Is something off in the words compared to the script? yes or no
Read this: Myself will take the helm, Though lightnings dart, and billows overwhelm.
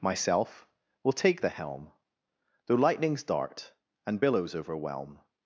no